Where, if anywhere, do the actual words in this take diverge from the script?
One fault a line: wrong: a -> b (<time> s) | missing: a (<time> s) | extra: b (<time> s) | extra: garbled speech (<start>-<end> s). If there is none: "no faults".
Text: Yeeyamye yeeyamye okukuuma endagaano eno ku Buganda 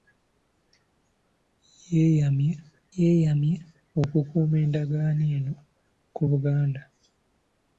no faults